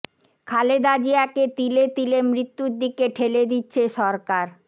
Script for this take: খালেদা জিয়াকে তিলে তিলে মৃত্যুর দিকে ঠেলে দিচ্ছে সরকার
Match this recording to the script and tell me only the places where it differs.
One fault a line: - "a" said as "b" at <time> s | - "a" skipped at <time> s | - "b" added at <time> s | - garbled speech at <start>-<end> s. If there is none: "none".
none